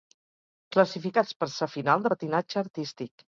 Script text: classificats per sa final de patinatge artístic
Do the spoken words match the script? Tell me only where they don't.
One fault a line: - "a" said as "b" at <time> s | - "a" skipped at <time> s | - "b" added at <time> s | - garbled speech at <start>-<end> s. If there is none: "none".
none